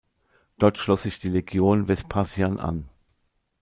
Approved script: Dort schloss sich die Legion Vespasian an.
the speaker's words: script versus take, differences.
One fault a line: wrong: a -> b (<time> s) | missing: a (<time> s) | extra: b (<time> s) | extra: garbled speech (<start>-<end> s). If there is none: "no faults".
no faults